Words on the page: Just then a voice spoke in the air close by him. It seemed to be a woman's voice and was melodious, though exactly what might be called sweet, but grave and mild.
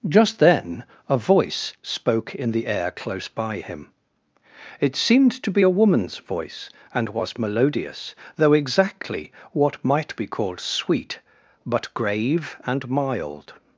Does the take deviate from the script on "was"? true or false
false